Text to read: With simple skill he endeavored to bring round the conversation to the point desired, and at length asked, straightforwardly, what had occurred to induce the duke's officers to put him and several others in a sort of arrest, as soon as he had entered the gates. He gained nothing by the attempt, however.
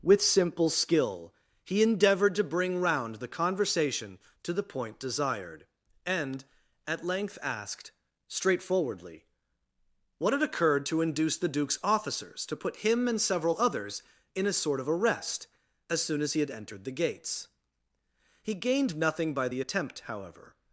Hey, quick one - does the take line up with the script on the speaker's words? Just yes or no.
yes